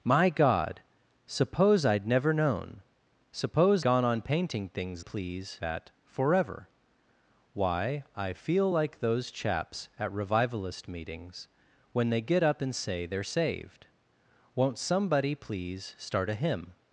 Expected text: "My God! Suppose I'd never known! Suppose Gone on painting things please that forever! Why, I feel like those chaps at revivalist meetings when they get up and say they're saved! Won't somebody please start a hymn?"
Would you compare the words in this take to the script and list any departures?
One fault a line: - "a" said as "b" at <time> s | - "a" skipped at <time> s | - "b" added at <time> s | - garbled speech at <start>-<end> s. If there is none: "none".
none